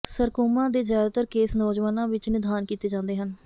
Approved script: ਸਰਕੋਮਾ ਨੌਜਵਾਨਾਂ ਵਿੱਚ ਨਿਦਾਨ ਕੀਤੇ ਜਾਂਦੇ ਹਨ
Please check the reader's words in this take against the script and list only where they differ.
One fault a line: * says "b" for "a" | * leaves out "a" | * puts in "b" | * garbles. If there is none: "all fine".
* puts in "ਦੇ ਜ਼ਿਆਦਾਤਰ ਕੇਸ"